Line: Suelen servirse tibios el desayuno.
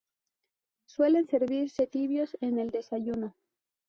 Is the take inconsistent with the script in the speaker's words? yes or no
yes